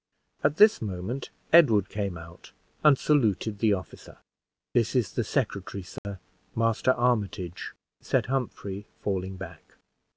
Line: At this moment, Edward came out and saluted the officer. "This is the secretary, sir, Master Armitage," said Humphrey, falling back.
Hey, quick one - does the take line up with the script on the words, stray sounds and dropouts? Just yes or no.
no